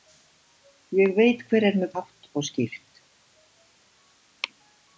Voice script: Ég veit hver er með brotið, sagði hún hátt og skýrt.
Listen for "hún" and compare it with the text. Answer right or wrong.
wrong